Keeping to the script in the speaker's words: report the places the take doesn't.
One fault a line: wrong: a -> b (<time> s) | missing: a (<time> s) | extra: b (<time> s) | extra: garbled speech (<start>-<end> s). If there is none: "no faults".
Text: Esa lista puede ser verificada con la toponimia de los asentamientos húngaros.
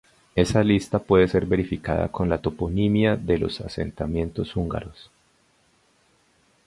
no faults